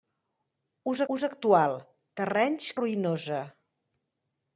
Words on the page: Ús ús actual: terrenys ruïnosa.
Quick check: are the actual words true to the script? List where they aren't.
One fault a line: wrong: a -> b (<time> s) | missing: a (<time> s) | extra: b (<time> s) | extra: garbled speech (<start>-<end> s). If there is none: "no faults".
no faults